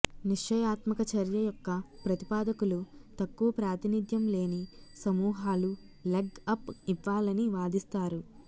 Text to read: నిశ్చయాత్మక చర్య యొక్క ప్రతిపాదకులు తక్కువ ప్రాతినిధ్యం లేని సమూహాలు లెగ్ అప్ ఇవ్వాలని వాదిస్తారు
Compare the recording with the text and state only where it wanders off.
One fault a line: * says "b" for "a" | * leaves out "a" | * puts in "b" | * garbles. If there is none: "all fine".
all fine